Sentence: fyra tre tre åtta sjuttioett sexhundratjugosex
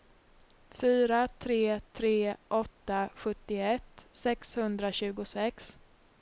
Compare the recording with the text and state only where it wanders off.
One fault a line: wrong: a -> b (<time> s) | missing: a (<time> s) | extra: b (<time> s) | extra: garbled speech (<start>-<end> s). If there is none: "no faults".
no faults